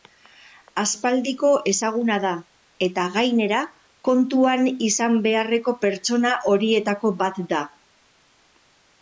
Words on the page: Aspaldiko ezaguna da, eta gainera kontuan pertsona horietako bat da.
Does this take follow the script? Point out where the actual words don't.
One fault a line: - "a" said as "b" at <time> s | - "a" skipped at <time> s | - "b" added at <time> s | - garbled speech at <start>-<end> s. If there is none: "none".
- "izan beharreko" added at 4.9 s